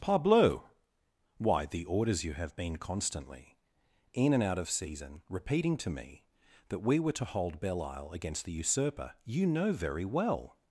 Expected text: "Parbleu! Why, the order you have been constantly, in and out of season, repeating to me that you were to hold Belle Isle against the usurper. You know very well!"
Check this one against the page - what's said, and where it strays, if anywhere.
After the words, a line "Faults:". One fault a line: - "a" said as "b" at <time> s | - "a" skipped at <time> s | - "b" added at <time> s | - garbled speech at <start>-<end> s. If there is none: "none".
"Parbleu! Why, the orders you have been constantly, in and out of season, repeating to me that we were to hold Belle Isle against the usurper. You know very well!"
Faults:
- "order" said as "orders" at 1.9 s
- "you" said as "we" at 6.8 s